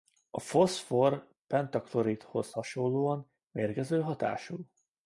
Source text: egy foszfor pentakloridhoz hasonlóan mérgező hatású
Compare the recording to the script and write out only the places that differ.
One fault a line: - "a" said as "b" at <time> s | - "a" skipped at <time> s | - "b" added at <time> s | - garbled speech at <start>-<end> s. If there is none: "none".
- "egy" said as "a" at 0.3 s